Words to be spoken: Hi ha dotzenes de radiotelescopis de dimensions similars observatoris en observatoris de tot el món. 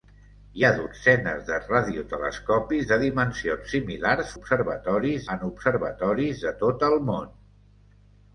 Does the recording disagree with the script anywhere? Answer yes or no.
no